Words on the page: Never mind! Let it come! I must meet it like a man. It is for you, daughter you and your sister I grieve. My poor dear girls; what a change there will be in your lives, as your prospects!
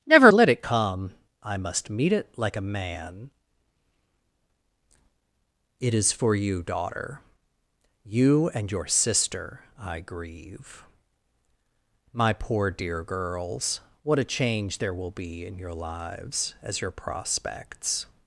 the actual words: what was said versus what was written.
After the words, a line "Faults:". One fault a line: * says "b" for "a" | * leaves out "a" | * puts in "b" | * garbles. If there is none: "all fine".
Never! Let it come! I must meet it like a man. It is for you, daughter you and your sister I grieve. My poor dear girls; what a change there will be in your lives, as your prospects!
Faults:
* leaves out "mind"